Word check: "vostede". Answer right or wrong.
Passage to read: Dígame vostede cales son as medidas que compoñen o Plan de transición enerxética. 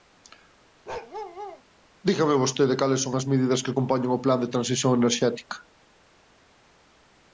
right